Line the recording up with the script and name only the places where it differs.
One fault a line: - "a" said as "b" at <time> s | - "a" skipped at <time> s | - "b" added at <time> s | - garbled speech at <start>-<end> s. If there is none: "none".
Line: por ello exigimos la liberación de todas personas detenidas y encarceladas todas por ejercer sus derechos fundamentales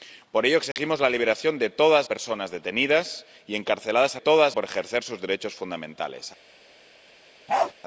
none